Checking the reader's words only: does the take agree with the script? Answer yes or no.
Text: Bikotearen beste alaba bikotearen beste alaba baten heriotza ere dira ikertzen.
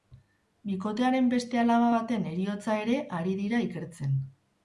no